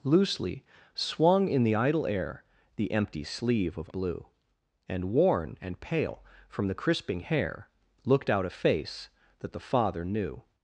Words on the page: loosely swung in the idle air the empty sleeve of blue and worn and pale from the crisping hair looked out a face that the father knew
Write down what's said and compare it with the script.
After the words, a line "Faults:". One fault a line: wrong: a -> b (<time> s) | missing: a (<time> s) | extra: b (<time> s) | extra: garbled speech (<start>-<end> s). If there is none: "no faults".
loosely swung in the idle air the empty sleeve of blue and worn and pale from the crisping hair looked out a face that the father knew
Faults:
no faults